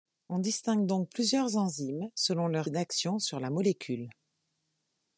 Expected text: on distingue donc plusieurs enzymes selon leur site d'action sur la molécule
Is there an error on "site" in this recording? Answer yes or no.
yes